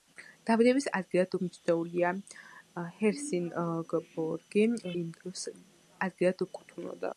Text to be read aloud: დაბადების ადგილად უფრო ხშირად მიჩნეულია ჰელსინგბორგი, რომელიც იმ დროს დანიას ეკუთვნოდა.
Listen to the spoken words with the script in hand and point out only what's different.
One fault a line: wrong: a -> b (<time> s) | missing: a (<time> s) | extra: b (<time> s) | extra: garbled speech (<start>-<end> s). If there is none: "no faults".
missing: უფრო ხშირად (1.4 s)
missing: რომელიც (4.7 s)
wrong: დანიას -> ადგილად (6.1 s)